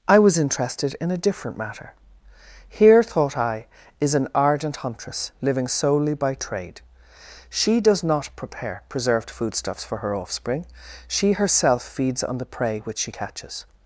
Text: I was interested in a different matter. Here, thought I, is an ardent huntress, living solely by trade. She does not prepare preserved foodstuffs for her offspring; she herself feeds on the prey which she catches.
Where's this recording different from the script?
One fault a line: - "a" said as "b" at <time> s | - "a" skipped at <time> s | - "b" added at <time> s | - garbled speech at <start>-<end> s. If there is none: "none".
none